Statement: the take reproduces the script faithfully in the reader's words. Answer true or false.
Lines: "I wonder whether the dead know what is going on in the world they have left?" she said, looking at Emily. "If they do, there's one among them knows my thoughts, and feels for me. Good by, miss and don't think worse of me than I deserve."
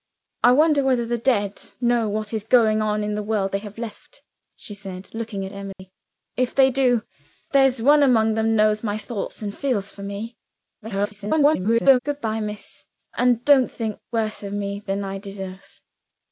false